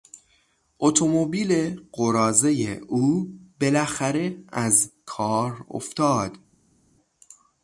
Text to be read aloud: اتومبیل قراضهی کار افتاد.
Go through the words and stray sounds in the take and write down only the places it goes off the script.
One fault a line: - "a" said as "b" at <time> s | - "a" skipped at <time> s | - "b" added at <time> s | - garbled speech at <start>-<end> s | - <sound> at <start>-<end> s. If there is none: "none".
- "او بالاخره از" added at 2.8 s